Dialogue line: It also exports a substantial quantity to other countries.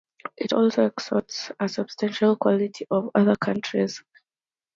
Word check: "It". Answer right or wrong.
right